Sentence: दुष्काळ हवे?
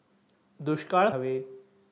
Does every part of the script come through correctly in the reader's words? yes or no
yes